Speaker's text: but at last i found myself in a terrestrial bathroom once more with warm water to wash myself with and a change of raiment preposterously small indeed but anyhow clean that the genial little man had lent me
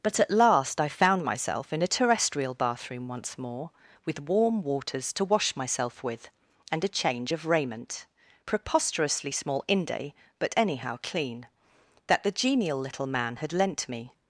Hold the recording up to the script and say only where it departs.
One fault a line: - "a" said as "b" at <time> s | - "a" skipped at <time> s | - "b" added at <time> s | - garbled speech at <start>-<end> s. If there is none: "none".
- "water" said as "waters" at 4.6 s
- "indeed" said as "inde" at 9.7 s